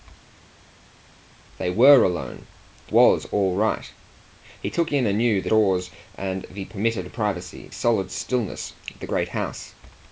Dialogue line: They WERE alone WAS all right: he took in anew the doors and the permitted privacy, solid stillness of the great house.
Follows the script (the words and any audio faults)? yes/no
yes